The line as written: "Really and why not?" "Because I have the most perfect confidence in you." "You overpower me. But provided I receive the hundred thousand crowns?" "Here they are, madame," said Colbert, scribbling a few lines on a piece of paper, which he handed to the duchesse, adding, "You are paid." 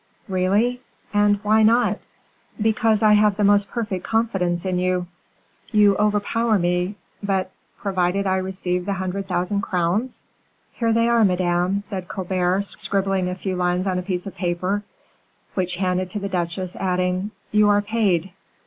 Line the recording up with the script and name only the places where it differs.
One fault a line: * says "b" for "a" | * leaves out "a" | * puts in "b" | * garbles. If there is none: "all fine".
* leaves out "he"